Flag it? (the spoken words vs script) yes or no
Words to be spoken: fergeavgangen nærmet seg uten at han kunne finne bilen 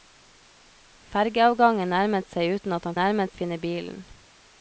yes